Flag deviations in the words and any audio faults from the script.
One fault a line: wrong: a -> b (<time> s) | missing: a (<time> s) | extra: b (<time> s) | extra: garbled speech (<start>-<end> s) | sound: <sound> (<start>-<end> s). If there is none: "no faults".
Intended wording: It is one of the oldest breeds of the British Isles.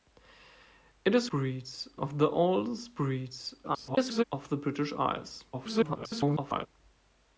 wrong: one -> breeds (1.3 s)
extra: garbled speech (3.6-4.2 s)
extra: garbled speech (5.5-6.7 s)